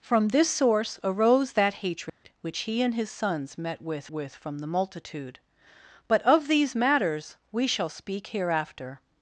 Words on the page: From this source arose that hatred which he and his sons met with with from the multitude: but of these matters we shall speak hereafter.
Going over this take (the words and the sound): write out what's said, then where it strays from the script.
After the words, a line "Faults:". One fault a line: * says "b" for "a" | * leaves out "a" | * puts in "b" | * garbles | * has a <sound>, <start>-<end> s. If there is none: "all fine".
From this source arose that hatred which he and his sons met with with from the multitude: but of these matters we shall speak hereafter.
Faults:
* has a dropout, 2.1-2.2 s